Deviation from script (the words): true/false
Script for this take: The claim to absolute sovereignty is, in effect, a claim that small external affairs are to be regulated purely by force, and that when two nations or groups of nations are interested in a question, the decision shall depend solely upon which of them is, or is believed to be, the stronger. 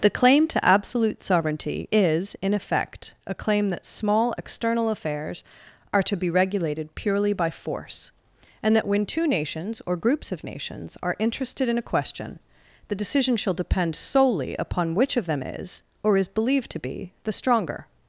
false